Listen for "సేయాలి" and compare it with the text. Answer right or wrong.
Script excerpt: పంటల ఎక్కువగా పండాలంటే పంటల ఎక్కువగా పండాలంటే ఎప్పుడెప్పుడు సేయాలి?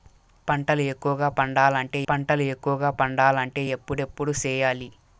right